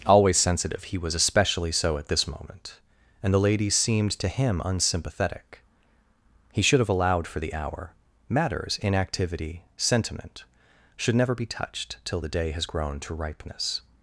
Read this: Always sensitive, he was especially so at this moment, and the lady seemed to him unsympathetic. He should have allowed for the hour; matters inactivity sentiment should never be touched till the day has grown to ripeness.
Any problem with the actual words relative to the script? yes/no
no